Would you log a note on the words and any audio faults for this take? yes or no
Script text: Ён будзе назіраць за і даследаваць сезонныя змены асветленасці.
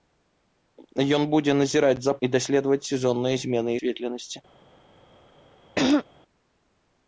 yes